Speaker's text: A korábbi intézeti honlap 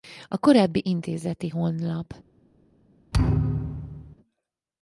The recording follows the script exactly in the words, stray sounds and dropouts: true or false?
false